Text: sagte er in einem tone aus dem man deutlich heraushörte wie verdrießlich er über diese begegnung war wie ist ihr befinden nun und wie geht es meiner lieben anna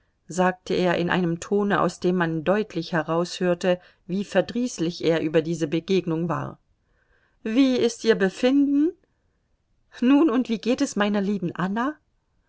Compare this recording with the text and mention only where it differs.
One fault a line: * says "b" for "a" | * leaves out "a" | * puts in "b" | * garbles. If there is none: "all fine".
all fine